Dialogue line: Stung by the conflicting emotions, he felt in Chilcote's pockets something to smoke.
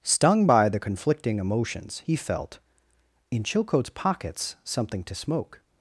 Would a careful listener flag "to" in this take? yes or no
no